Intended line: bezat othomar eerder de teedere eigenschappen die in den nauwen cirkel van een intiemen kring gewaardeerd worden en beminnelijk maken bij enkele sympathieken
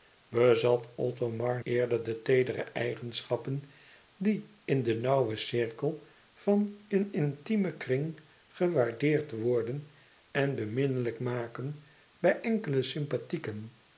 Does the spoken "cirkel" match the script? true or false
true